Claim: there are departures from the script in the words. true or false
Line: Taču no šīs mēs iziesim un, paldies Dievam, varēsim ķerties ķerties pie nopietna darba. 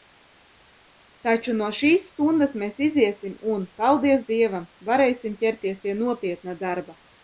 true